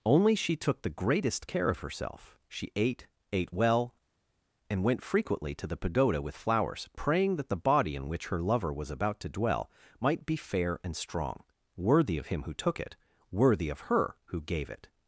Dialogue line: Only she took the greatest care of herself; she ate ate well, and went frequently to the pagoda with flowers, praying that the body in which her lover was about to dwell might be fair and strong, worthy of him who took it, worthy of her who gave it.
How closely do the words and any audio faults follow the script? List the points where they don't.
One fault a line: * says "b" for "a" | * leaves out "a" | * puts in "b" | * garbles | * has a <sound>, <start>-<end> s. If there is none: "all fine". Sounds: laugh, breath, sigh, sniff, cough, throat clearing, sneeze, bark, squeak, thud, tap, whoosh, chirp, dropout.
all fine